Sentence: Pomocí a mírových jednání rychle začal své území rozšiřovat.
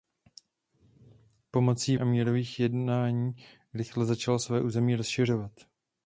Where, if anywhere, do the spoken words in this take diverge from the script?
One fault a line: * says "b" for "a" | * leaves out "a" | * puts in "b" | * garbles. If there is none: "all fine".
all fine